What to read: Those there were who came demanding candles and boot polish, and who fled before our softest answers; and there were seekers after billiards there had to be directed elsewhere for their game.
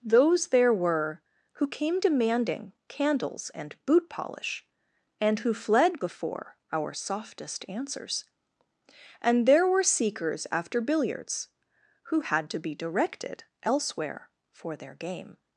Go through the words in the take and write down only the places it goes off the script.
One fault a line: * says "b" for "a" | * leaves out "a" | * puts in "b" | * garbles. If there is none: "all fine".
* says "who" for "there"